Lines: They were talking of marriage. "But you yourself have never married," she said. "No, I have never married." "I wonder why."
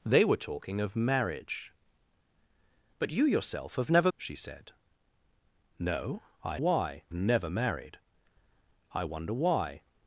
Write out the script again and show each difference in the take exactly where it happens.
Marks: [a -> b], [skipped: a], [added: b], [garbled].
They were talking of marriage. "But you yourself have never [skipped: married,"] she said. "No, I [have -> why] never married." "I wonder why."